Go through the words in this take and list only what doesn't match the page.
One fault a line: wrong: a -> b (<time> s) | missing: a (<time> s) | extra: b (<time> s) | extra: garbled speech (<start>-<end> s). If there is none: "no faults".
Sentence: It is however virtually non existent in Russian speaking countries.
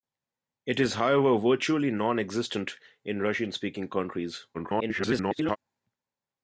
extra: garbled speech (4.5-5.6 s)